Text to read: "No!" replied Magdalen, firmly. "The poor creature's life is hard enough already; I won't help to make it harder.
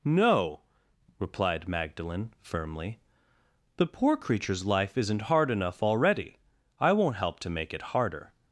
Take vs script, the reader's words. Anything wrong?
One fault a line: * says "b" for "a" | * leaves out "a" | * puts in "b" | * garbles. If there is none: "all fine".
* says "isn't" for "is"